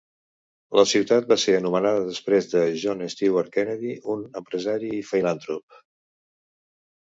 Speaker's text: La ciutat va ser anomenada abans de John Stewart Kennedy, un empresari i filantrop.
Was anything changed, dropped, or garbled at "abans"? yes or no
yes